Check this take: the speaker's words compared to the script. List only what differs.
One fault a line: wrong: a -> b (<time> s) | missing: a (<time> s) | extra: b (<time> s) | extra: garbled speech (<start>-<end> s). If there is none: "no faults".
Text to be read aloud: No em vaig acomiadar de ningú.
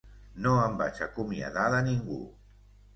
no faults